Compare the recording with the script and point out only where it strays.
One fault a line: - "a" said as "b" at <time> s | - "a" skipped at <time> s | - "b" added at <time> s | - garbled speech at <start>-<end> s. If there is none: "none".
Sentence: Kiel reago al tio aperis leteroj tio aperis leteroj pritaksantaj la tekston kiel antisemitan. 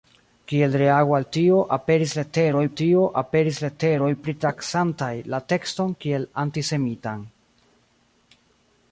none